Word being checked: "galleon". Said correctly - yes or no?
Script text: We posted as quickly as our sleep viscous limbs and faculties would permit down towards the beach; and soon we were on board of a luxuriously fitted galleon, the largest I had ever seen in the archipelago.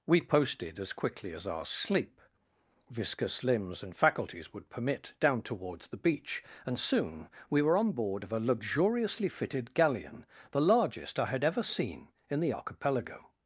yes